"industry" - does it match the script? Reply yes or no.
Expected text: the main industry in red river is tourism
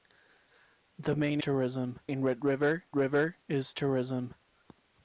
no